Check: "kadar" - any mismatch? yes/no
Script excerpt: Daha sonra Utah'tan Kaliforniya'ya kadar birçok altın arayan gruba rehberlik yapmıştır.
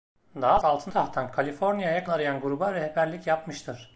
yes